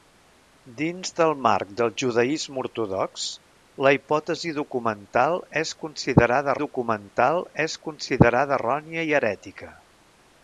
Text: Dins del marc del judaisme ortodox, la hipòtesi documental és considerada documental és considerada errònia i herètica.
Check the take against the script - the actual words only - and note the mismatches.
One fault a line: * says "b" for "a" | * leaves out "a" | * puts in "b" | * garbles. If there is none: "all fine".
all fine